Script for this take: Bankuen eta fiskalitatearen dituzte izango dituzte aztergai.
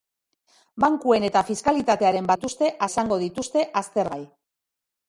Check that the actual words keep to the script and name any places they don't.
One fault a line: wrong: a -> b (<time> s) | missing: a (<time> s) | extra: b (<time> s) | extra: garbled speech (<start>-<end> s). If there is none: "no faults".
no faults